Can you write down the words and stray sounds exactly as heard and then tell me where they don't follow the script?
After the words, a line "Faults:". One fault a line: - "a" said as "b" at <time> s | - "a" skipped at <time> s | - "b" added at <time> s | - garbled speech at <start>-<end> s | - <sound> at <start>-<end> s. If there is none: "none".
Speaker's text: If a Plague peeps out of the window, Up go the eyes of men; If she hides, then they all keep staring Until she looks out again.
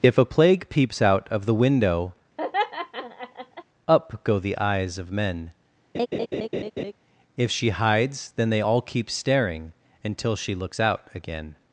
If a Plague peeps out of the window, Up go the eyes of men; If she hides, then they all keep staring Until she looks out again.
Faults:
- laugh at 2.4-3.6 s
- laugh at 5.9-6.9 s